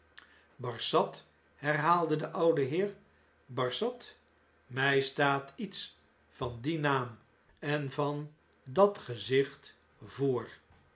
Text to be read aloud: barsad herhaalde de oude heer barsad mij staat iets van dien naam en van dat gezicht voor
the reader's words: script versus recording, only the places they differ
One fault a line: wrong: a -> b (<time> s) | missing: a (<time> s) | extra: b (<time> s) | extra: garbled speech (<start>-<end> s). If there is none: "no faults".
no faults